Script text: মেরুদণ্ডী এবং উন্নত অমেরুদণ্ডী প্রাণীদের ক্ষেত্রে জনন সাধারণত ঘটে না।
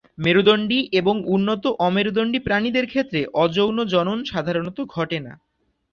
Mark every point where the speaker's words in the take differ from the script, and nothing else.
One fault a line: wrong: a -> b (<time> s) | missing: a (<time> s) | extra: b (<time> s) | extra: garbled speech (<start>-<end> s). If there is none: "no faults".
extra: অযৌন (3.4 s)